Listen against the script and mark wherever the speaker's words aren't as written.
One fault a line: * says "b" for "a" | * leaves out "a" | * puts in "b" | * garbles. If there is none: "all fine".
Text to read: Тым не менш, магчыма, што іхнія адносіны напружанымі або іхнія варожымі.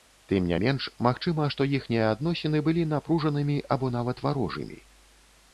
* puts in "былі"
* says "нават" for "іхнія"